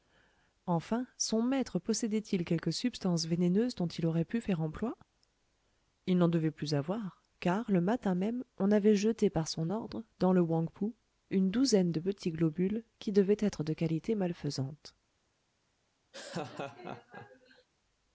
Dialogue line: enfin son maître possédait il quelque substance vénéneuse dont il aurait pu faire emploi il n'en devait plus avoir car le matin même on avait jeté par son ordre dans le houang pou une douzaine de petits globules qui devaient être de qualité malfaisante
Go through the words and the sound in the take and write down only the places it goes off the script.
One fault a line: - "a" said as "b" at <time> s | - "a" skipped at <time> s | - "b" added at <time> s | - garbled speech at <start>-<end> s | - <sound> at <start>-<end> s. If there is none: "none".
- laugh at 16.1-17.7 s